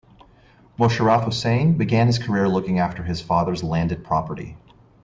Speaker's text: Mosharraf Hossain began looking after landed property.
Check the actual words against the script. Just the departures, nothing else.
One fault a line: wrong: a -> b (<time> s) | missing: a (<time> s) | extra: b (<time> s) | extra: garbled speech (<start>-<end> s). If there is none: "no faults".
extra: his career (2.1 s)
extra: his father's (3.0 s)